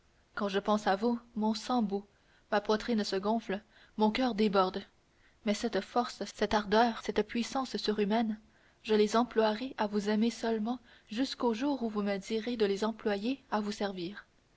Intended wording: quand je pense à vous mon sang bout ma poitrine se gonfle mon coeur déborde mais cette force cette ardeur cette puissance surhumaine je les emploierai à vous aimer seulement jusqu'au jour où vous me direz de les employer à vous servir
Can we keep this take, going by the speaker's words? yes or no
yes